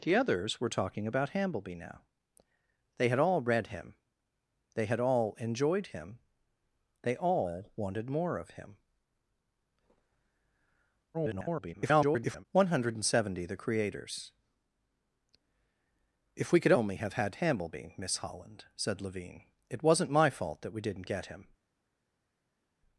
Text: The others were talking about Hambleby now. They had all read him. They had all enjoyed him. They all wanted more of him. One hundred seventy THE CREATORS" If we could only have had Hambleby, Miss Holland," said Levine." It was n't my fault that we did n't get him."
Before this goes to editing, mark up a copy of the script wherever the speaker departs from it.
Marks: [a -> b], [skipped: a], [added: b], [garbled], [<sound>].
The others were talking about Hambleby now. They had all read him. They had all enjoyed him. They all wanted more of him. [garbled] One hundred seventy THE CREATORS" If we could only have had Hambleby, Miss Holland," said Levine." It was n't my fault that we did n't get him."